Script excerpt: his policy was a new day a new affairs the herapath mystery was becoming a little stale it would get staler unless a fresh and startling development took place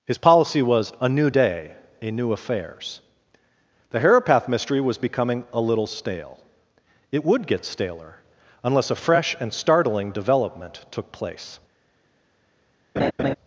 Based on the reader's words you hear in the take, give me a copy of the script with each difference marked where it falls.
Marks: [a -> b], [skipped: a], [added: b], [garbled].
his policy was a new day a new affairs the herapath mystery was becoming a little stale it would get staler unless a fresh and startling development took place